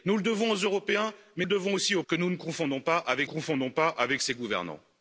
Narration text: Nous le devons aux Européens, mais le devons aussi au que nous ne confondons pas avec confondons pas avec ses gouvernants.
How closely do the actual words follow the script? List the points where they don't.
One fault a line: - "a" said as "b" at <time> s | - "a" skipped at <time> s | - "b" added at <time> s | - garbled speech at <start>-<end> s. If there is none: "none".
none